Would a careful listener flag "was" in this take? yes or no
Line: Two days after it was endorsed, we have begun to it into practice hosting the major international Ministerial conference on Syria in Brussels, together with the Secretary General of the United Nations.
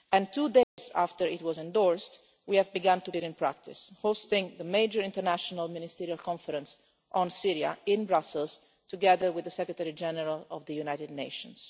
no